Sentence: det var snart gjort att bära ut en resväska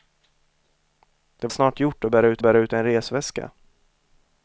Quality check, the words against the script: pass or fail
fail